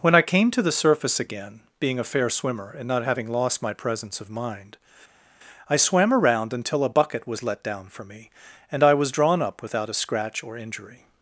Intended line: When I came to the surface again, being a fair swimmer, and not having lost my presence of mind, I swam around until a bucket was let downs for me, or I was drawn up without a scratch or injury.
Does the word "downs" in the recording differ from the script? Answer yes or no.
yes